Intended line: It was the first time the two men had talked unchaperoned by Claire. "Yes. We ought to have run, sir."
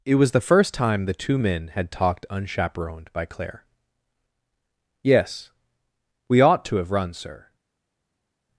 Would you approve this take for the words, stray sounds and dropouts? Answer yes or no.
yes